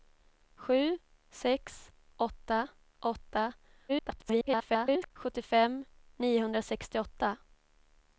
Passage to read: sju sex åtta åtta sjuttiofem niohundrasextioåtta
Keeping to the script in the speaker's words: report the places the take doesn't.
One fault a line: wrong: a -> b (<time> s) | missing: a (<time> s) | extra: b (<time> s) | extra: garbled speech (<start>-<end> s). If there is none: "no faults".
extra: garbled speech (3.9-5.1 s)